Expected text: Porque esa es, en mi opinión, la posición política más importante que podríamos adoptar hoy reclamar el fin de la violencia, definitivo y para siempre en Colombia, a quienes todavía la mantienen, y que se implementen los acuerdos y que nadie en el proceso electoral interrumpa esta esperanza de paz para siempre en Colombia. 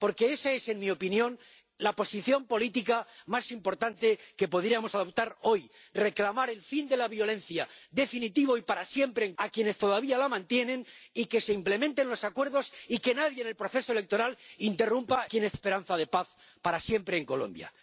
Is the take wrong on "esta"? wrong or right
wrong